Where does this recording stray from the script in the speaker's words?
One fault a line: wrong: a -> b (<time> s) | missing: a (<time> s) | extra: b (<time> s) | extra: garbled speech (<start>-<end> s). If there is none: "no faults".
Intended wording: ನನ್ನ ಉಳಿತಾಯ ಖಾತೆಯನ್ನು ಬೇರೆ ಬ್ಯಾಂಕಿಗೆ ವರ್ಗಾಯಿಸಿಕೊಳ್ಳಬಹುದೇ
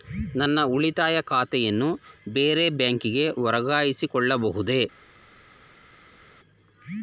no faults